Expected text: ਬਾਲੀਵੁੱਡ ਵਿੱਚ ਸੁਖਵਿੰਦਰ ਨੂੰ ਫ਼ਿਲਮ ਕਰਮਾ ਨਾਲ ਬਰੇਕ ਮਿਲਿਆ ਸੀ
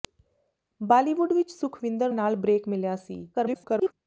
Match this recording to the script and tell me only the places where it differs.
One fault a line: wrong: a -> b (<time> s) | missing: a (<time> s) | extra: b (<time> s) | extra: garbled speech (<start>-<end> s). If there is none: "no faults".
missing: ਨੂੰ ਫ਼ਿਲਮ ਕਰਮਾ (2.1 s)
extra: garbled speech (3.3-3.9 s)